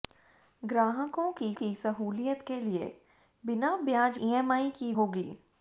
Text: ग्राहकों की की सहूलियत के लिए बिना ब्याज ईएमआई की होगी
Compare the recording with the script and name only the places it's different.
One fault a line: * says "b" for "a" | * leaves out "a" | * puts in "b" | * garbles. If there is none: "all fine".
all fine